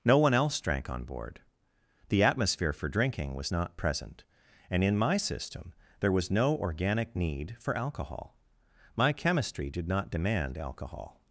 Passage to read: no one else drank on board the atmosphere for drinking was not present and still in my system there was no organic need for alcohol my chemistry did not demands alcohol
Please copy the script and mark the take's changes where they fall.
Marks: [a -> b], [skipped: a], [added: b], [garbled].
no one else drank on board the atmosphere for drinking was not present and [skipped: still] in my system there was no organic need for alcohol my chemistry did not [demands -> demand] alcohol